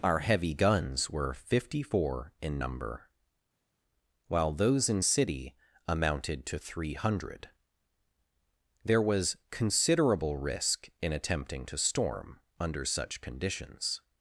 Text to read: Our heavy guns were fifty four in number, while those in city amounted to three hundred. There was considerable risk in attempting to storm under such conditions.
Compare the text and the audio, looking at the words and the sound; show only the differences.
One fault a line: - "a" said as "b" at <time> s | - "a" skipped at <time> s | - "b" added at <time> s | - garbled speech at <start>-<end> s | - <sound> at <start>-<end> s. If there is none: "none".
none